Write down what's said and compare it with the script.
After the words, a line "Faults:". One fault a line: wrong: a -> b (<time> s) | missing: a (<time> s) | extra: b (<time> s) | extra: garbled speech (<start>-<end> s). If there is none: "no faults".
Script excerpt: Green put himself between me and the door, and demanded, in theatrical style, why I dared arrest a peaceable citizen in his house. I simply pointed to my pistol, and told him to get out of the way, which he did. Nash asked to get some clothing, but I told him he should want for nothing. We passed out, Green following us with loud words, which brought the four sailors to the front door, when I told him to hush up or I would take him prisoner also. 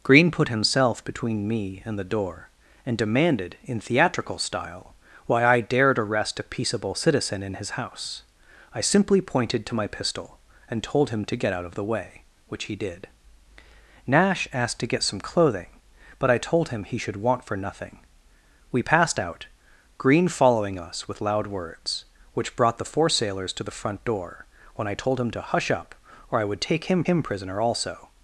Green put himself between me and the door, and demanded, in theatrical style, why I dared arrest a peaceable citizen in his house. I simply pointed to my pistol, and told him to get out of the way, which he did. Nash asked to get some clothing, but I told him he should want for nothing. We passed out, Green following us with loud words, which brought the four sailors to the front door, when I told him to hush up or I would take him him prisoner also.
Faults:
extra: him (27.0 s)